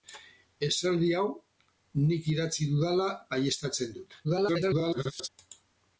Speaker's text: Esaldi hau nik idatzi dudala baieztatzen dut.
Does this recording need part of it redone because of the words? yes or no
yes